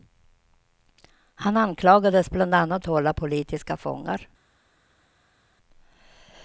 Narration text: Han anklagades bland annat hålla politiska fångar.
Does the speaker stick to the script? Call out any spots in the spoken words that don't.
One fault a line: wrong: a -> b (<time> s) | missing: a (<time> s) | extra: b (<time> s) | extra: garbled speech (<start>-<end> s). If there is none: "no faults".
no faults